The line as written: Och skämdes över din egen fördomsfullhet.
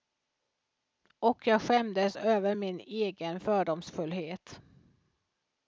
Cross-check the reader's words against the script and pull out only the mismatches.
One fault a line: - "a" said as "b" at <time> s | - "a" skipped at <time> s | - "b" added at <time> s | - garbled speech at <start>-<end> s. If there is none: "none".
- "jag" added at 1.5 s
- "din" said as "min" at 2.5 s